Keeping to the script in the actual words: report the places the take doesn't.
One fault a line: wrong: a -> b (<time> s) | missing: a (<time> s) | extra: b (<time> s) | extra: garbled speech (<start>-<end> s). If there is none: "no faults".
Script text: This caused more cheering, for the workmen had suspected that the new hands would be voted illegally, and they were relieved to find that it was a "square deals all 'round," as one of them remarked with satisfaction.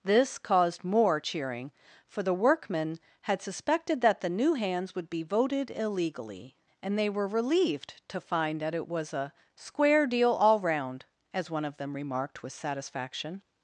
wrong: deals -> deal (10.1 s)